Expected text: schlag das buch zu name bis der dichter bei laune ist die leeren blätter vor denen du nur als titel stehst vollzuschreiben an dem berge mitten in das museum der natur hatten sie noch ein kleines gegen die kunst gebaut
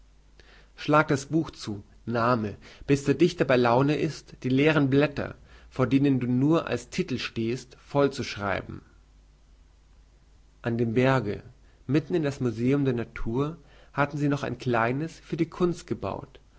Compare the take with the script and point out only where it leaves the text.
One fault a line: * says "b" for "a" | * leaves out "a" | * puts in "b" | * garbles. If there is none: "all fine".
* says "für" for "gegen"